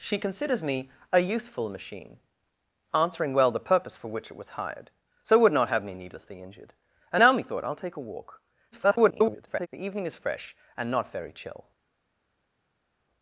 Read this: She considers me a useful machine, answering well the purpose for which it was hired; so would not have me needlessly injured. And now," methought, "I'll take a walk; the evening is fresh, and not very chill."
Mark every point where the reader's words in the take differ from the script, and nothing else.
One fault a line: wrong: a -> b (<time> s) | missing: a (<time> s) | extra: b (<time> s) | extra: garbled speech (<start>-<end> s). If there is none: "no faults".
extra: garbled speech (8.7-9.7 s)